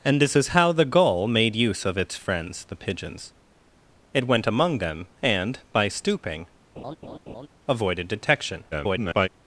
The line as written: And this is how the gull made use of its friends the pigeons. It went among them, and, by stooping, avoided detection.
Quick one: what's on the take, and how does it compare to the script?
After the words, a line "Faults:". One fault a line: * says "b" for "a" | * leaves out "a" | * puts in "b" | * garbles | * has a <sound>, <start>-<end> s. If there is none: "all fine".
And this is how the gull made use of its friends the pigeons. It went among them, and, by stooping, avoided detection. [garbled]
Faults:
* has a laugh, 6.8-7.5 s
* garbles